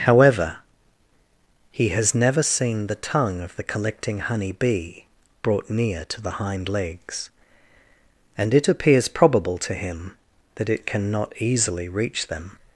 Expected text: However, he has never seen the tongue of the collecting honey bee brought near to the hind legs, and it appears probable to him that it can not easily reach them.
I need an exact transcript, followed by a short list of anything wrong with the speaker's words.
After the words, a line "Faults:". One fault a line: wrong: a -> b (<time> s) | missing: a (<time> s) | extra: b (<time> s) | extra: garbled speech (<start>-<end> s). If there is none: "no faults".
However, he has never seen the tongue of the collecting honey bee brought near to the hind legs, and it appears probable to him that it can not easily reach them.
Faults:
no faults